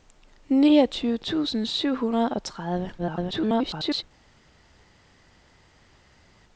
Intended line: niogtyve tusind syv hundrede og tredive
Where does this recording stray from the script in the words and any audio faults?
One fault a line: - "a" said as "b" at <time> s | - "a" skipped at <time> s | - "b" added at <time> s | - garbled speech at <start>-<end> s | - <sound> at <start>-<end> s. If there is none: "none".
- garbled speech at 3.0-4.0 s